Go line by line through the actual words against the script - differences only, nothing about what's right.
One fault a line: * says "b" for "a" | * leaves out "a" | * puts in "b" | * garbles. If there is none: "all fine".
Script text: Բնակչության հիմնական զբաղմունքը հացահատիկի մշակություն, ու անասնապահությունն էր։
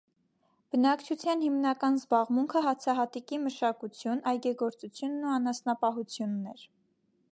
* puts in "այգեգործությունն"